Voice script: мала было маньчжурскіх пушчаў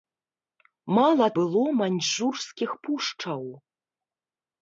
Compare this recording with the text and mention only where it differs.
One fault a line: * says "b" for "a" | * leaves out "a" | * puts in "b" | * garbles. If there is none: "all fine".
all fine